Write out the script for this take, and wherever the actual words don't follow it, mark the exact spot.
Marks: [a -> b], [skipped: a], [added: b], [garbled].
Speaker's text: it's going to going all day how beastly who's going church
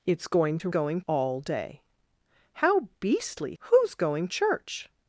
it's going to going all day how beastly who's going church